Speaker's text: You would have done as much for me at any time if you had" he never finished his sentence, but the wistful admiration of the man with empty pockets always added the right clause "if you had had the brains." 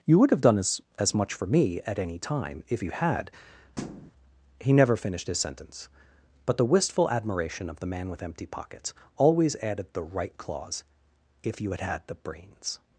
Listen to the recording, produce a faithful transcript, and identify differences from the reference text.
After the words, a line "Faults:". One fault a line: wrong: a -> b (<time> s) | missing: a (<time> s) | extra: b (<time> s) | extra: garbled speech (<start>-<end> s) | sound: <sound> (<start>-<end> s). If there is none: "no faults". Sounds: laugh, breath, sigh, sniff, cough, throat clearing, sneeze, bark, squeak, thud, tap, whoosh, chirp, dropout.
You would have done as as much for me at any time if you had" he never finished his sentence, but the wistful admiration of the man with empty pockets always added the right clause "if you had had the brains."
Faults:
extra: as (1.0 s)
sound: thud (3.8-4.1 s)